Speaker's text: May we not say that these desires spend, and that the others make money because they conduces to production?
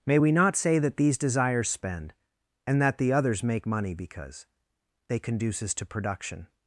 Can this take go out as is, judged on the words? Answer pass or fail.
pass